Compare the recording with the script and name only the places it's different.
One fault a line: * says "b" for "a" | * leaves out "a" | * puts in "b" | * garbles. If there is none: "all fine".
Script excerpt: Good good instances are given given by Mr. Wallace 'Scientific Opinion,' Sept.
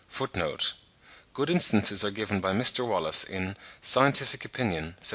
* leaves out "good"
* leaves out "given"
* puts in "in"